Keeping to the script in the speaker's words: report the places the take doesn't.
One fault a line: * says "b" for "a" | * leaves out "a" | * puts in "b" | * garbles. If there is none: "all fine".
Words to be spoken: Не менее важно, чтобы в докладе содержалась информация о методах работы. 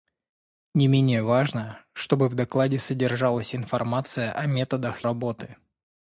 all fine